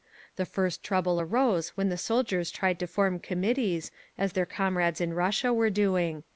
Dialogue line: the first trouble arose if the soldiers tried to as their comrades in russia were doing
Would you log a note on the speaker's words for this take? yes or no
yes